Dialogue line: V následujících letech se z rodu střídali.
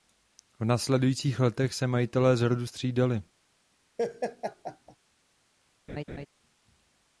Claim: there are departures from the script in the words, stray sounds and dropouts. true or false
true